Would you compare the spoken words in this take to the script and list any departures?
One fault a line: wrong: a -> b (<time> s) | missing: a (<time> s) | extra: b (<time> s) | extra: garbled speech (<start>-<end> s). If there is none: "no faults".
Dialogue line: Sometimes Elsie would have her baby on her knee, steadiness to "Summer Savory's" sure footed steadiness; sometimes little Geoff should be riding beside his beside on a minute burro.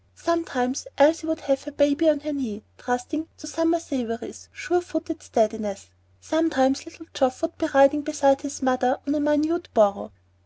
wrong: steadiness -> trusting (2.8 s)
wrong: should -> would (7.4 s)
wrong: beside -> mother (8.6 s)